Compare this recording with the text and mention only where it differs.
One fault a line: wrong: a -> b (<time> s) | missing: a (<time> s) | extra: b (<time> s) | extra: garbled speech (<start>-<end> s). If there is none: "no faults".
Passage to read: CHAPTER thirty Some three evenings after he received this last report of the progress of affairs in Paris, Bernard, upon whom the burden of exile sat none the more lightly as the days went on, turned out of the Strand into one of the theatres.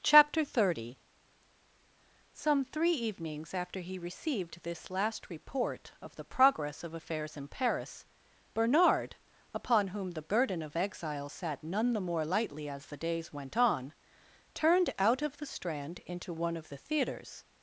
no faults